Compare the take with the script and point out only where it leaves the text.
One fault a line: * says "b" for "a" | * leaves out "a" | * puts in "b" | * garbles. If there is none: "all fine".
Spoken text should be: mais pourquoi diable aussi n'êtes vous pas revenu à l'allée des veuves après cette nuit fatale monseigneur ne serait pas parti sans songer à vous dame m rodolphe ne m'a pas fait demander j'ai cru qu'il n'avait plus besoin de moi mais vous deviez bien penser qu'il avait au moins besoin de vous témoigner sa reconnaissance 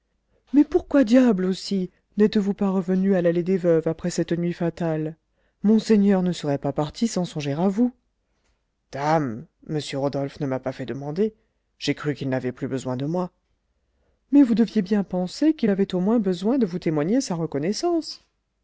all fine